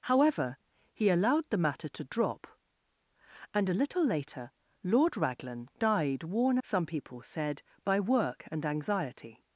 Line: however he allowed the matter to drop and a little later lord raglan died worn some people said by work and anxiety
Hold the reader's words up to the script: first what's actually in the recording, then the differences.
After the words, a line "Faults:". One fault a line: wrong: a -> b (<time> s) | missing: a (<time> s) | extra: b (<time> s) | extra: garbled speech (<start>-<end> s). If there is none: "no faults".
however he allowed the matter to drop and a little later lord raglan died worn some people said by work and anxiety
Faults:
no faults